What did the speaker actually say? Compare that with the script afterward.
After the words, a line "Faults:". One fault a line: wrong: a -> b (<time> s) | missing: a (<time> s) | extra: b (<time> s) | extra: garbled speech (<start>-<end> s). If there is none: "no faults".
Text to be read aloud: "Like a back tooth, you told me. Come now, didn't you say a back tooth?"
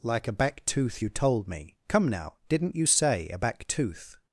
"Like a back tooth, you told me. Come now, didn't you say a back tooth?"
Faults:
no faults